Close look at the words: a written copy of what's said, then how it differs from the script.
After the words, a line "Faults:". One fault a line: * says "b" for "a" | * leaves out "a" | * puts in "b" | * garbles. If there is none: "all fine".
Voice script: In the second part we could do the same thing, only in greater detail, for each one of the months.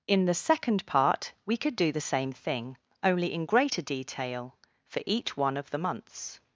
In the second part we could do the same thing, only in greater detail, for each one of the months.
Faults:
all fine